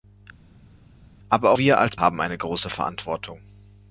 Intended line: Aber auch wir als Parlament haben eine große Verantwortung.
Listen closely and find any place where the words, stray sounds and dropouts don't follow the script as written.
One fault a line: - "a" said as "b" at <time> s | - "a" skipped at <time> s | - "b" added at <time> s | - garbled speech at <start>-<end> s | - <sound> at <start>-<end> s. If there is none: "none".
- "auch" skipped at 1.5 s
- "Parlament" skipped at 2.0 s